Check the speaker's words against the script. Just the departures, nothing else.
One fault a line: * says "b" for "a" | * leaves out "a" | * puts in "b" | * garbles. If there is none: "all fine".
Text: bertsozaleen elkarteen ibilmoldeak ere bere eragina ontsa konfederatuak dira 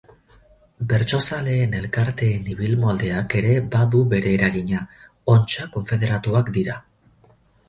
* puts in "badu"